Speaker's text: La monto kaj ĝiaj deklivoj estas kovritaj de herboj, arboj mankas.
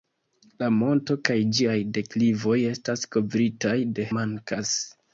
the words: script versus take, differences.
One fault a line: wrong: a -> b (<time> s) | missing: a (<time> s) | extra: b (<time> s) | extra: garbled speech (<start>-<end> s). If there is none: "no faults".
missing: herboj arboj (4.1 s)